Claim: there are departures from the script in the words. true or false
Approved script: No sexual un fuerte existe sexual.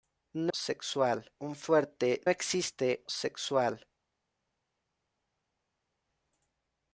false